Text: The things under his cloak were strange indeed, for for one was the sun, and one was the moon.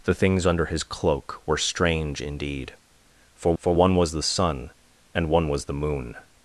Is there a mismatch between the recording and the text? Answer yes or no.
no